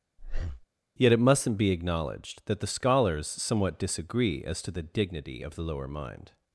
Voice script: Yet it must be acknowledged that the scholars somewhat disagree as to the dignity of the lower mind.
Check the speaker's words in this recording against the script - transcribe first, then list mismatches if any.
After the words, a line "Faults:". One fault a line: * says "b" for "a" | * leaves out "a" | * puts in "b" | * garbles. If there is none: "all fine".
Yet it mustn't be acknowledged that the scholars somewhat disagree as to the dignity of the lower mind.
Faults:
* says "mustn't" for "must"